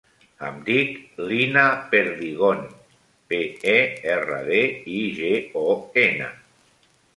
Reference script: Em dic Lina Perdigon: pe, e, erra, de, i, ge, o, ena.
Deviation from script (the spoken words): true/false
false